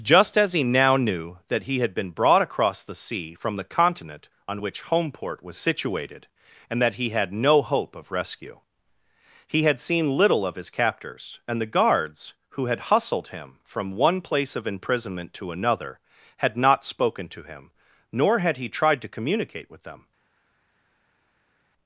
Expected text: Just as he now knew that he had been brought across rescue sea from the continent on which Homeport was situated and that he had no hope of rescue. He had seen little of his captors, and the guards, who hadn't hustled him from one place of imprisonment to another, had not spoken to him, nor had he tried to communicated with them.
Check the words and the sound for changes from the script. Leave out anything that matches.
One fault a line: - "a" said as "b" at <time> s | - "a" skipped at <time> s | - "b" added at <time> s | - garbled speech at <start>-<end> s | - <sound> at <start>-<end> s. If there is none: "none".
- "rescue" said as "the" at 2.8 s
- "hadn't" said as "had" at 12.7 s
- "communicated" said as "communicate" at 19.1 s